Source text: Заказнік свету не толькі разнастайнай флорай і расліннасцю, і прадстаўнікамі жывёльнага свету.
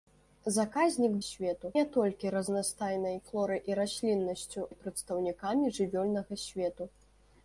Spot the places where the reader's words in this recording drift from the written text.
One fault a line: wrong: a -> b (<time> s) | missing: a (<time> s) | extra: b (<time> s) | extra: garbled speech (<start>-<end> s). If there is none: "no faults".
no faults